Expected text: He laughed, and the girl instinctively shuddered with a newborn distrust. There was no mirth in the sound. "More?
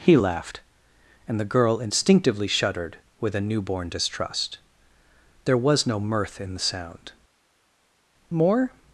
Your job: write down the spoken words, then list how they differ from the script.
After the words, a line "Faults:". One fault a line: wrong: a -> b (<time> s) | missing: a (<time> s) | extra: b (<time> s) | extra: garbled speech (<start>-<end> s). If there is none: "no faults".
He laughed, and the girl instinctively shuddered with a newborn distrust. There was no mirth in the sound. "More?
Faults:
no faults